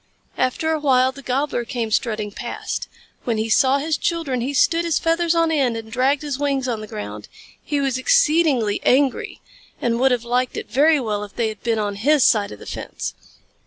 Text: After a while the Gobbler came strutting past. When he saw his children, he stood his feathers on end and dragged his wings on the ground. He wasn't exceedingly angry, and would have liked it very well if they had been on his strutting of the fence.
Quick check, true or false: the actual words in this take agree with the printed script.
false